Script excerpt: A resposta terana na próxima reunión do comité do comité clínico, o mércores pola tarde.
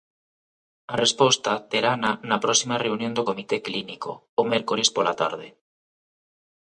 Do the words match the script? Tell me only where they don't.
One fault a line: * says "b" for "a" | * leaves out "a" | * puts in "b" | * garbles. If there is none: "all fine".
* leaves out "do comité"